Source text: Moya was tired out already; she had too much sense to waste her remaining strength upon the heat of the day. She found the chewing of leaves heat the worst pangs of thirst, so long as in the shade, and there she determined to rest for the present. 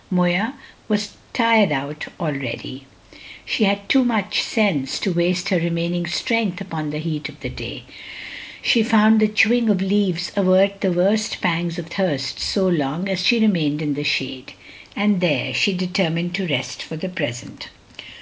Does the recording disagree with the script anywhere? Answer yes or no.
yes